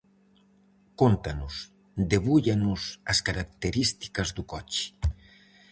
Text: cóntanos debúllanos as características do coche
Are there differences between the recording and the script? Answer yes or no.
no